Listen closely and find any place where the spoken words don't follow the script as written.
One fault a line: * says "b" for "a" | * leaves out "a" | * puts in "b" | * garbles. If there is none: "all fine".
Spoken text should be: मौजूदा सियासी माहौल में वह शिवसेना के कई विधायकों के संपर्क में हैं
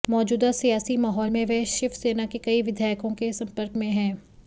all fine